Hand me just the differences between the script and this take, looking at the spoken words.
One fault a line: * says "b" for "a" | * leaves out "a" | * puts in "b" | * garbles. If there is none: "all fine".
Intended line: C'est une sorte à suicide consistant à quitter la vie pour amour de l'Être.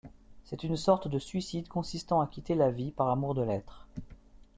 * says "de" for "à"
* says "par" for "pour"